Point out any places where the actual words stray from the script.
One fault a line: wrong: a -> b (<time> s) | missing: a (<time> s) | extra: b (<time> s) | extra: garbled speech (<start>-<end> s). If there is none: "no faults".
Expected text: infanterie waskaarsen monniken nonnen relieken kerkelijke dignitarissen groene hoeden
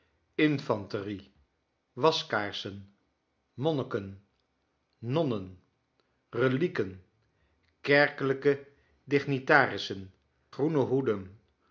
no faults